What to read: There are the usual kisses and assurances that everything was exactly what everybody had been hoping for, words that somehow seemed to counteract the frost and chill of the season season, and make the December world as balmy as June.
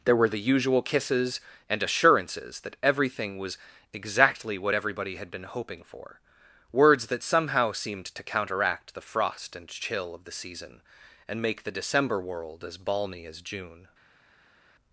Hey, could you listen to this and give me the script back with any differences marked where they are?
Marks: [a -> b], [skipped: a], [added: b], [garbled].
There [are -> were] the usual kisses and assurances that everything was exactly what everybody had been hoping for, words that somehow seemed to counteract the frost and chill of the season [skipped: season,] and make the December world as balmy as June.